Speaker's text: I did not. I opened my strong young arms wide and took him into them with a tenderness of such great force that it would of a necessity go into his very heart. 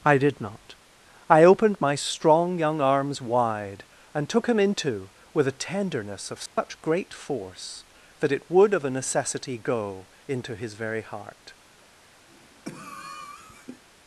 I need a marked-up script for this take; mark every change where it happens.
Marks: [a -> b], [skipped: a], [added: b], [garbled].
I did not. I opened my strong young arms wide and took him into [skipped: them] with a tenderness of such great force that it would of a necessity go into his very heart.